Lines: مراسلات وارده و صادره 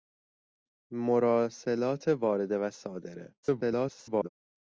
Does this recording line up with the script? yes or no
no